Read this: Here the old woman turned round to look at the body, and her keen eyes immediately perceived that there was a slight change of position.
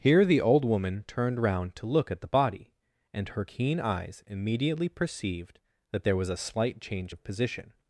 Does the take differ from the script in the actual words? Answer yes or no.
no